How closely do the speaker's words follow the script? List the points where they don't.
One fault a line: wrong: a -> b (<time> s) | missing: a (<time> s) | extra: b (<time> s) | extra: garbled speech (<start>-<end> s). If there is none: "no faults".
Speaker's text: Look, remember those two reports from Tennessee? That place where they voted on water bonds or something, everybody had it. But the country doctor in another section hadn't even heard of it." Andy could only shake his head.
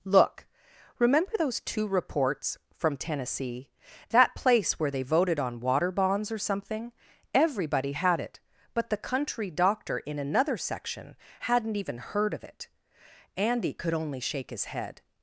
no faults